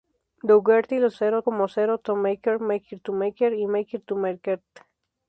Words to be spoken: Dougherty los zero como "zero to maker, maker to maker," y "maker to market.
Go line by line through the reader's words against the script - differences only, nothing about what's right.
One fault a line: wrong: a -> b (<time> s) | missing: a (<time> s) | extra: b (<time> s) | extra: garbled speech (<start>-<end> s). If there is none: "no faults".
no faults